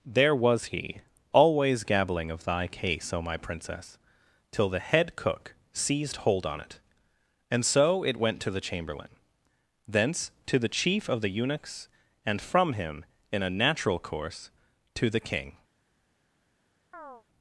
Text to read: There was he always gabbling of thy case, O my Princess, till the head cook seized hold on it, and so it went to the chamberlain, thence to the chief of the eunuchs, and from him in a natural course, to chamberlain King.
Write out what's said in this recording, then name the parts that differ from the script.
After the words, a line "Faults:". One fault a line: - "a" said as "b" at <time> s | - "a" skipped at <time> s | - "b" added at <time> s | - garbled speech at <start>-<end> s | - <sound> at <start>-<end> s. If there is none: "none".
There was he always gabbling of thy case, O my Princess, till the head cook seized hold on it, and so it went to the chamberlain, thence to the chief of the eunuchs, and from him in a natural course, to the King.
Faults:
- "chamberlain" said as "the" at 15.1 s
- chirp at 16.9-17.2 s